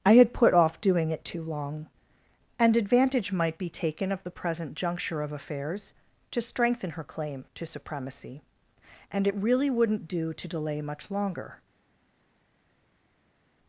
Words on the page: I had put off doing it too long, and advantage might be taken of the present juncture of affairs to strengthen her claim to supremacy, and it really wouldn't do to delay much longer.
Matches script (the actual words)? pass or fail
pass